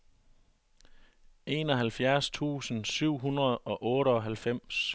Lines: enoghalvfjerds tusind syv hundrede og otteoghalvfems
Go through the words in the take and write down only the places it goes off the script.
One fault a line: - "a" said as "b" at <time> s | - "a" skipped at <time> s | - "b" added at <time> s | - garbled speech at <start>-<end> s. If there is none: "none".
none